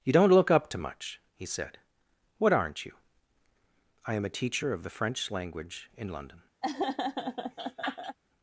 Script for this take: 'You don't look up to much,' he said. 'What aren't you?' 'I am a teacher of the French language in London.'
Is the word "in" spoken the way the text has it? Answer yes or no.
yes